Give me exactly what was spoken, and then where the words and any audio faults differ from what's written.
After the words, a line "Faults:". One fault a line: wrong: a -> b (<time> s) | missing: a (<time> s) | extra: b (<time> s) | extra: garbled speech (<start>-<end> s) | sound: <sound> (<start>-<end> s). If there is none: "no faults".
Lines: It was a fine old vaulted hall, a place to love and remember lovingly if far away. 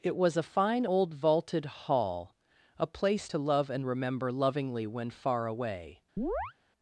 It was a fine old vaulted hall, a place to love and remember lovingly when far away.
Faults:
wrong: if -> when (4.9 s)
sound: chirp (6.2-6.5 s)